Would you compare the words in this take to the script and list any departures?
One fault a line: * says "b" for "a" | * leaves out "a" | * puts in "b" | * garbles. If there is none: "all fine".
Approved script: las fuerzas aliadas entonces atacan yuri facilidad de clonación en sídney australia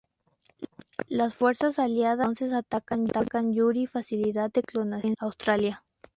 * leaves out "sídney"